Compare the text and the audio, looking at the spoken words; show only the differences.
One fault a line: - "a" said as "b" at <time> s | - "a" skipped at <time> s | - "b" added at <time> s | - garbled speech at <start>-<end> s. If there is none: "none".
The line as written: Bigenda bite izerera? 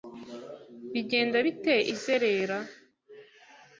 none